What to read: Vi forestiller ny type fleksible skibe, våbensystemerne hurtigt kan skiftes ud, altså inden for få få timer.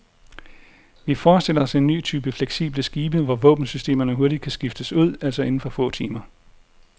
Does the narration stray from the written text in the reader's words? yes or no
yes